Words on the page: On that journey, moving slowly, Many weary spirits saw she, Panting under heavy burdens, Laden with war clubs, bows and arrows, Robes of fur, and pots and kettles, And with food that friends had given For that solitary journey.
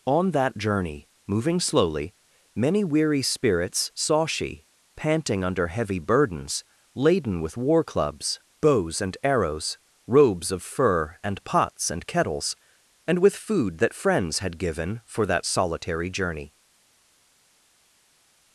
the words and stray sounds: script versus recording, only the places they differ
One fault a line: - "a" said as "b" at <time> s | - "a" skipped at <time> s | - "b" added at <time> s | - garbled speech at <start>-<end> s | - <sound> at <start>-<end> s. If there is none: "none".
none